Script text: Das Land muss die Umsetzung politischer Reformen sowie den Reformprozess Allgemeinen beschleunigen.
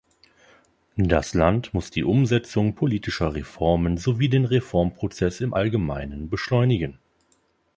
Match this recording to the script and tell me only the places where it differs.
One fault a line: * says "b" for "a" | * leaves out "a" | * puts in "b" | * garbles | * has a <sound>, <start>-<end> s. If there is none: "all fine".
* puts in "im"